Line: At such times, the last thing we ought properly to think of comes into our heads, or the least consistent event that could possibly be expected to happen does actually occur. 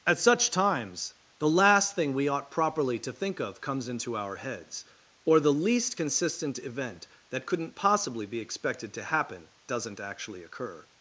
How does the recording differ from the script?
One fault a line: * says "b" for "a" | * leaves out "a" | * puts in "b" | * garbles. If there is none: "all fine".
* says "couldn't" for "could"
* says "doesn't" for "does"